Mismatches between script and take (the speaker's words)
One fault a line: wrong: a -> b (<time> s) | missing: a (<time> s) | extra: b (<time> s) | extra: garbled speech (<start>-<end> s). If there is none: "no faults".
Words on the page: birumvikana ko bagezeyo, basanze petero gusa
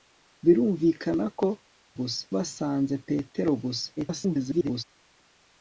wrong: bagezeyo -> gusa (2.0 s)
extra: garbled speech (4.0-4.8 s)